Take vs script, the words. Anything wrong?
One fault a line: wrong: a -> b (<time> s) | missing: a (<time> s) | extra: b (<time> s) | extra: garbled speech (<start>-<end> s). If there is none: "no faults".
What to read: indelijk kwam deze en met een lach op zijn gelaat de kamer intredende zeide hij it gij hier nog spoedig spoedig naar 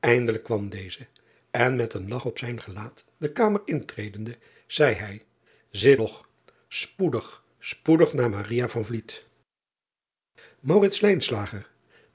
missing: gij hier (6.0 s)